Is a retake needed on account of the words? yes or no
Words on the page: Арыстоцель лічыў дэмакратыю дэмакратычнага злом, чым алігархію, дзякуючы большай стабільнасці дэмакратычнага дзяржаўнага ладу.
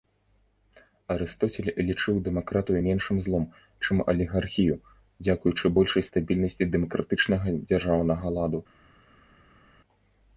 yes